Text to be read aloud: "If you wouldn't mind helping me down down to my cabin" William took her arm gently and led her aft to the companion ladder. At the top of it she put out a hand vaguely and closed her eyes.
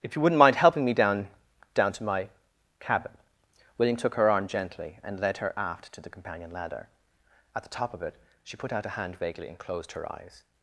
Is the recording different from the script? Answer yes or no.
no